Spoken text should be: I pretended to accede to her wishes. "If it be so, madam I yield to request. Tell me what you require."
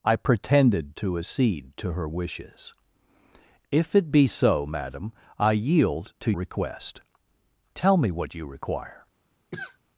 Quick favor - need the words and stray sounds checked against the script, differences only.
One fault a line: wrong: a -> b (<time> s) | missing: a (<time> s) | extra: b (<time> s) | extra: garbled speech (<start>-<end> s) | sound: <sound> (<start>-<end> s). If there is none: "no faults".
sound: cough (9.5-9.8 s)